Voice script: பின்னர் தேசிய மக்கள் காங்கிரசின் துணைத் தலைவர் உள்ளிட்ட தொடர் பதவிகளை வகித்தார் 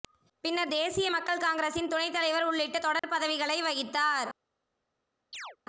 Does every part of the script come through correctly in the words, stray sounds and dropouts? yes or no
no